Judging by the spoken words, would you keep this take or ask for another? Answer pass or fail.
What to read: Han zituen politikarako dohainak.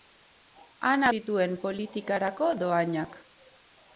pass